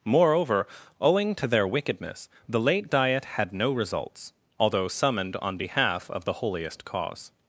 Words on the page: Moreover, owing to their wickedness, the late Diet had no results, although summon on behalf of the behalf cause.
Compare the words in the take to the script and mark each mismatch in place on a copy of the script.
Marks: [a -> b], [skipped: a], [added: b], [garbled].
Moreover, owing to their wickedness, the late Diet had no results, although [summon -> summoned] on behalf of the [behalf -> holiest] cause.